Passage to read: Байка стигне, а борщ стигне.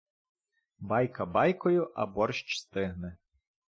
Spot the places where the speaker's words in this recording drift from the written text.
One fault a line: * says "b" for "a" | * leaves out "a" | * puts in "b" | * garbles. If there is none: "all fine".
* says "байкою" for "стигне"